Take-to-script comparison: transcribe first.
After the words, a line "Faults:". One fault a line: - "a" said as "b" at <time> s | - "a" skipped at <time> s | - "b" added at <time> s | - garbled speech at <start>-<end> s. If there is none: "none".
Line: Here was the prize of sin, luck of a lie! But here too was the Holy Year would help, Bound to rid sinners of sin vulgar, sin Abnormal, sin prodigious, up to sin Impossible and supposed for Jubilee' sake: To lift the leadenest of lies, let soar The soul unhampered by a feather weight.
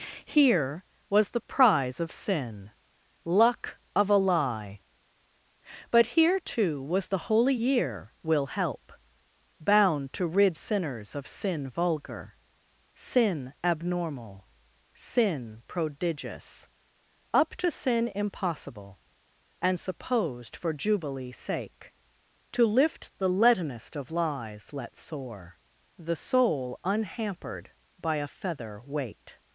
Here was the prize of sin, luck of a lie! But here too was the Holy Year will help, Bound to rid sinners of sin vulgar, sin Abnormal, sin prodigious, up to sin Impossible and supposed for Jubilee' sake: To lift the leadenest of lies, let soar The soul unhampered by a feather weight.
Faults:
- "would" said as "will" at 8.2 s